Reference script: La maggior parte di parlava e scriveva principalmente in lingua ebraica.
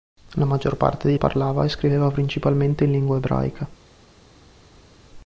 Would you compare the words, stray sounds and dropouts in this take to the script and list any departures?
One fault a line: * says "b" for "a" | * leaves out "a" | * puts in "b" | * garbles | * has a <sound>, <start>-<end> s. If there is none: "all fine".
all fine